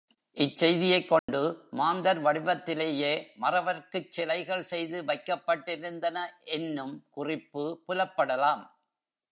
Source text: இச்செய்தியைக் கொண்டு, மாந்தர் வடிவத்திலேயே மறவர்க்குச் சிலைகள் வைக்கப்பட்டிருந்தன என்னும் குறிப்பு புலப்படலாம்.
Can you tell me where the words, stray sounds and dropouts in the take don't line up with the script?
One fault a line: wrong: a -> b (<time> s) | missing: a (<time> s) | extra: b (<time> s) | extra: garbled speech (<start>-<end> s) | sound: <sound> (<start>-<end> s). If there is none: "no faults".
sound: dropout (1.2-1.3 s)
extra: செய்து (4.6 s)